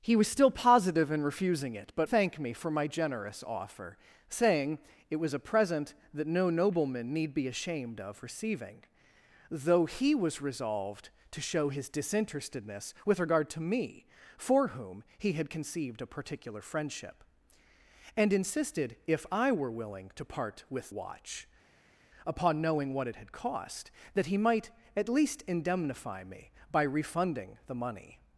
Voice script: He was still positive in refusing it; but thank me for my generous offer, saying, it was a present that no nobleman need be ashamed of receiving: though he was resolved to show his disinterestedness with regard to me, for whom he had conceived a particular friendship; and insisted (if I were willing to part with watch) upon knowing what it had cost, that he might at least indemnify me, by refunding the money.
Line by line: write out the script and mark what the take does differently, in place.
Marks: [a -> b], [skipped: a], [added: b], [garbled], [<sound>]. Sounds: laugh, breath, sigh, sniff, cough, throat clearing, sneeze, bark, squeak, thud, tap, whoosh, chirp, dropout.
He was still positive in refusing it; but thank me for my generous offer, saying, it was a present that no nobleman need be ashamed of receiving: though he was resolved to show his disinterestedness with regard to me, for whom he had conceived a particular friendship; and insisted (if I were willing to part with watch) upon knowing what it had cost, that he might at least indemnify me, by refunding the money.